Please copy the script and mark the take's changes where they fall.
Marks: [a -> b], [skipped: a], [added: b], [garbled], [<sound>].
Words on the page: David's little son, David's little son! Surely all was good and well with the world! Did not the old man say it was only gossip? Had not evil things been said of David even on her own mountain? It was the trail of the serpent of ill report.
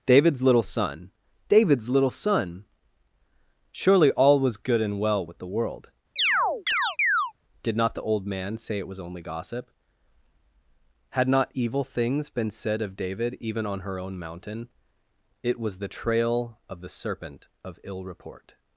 David's little son, David's little son! Surely all was good and well with the world! [chirp] Did not the old man say it was only gossip? Had not evil things been said of David even on her own mountain? It was the trail of the serpent of ill report.